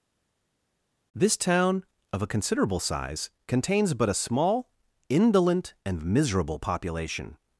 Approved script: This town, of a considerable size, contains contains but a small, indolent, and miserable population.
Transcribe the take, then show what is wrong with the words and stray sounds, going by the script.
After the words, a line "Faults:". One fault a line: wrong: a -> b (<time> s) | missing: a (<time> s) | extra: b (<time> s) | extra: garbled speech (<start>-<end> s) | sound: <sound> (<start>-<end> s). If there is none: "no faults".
This town, of a considerable size, contains but a small, indolent, and miserable population.
Faults:
missing: contains (3.9 s)